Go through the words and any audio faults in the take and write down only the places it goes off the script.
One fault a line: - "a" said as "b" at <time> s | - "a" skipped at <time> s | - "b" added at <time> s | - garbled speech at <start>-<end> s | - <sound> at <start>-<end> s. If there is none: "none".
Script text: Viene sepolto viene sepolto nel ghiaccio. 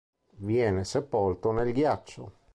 - "viene sepolto" skipped at 1.5 s